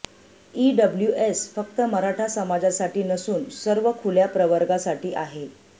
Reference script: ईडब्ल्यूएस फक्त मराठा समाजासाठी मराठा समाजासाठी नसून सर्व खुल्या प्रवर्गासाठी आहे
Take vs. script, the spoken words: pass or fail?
fail